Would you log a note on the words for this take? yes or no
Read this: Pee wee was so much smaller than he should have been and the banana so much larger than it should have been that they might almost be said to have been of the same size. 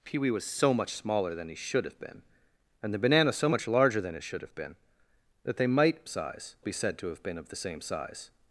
yes